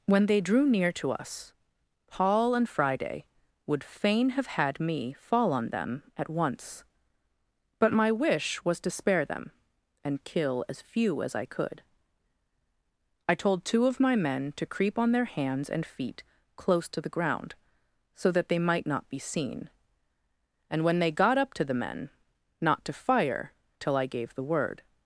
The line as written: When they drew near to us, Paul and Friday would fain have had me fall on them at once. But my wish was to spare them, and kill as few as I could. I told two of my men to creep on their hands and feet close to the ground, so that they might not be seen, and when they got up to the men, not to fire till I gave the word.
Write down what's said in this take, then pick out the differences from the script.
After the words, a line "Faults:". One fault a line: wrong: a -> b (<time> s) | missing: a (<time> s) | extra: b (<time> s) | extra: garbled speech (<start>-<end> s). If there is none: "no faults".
When they drew near to us, Paul and Friday would fain have had me fall on them at once. But my wish was to spare them, and kill as few as I could. I told two of my men to creep on their hands and feet close to the ground, so that they might not be seen, and when they got up to the men, not to fire till I gave the word.
Faults:
no faults